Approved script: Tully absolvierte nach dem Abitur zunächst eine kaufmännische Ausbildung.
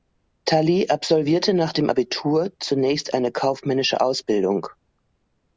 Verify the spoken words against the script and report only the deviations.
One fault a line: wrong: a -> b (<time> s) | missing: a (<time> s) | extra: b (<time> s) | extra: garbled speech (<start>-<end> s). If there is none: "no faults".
no faults